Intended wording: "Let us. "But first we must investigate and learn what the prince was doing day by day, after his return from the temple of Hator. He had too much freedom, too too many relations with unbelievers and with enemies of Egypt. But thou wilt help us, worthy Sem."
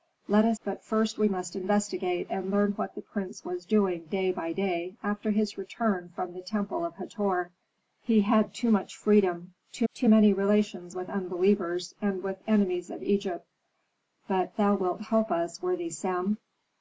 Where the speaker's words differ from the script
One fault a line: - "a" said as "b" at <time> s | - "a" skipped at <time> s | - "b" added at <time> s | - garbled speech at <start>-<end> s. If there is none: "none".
none